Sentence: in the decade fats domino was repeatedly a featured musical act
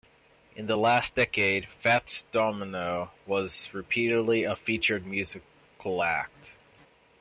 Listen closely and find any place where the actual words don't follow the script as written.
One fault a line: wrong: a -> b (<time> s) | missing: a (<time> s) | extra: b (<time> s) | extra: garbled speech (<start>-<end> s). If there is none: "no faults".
extra: last (0.8 s)